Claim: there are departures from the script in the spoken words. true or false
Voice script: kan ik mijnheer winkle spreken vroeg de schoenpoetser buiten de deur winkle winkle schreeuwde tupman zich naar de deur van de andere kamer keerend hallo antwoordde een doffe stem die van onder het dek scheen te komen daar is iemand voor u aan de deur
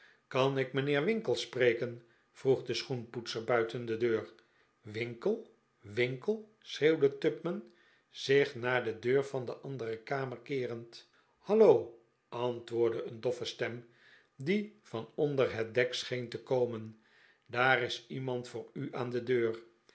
false